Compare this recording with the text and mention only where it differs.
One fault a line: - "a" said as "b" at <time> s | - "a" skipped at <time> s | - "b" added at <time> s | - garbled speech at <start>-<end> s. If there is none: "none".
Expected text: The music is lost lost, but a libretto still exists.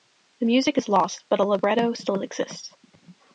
- "lost" skipped at 1.2 s